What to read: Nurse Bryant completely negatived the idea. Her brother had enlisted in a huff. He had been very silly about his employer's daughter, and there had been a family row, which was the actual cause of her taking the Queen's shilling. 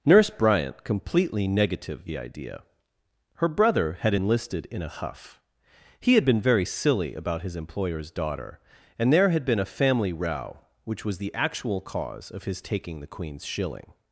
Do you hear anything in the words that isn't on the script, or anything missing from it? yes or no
yes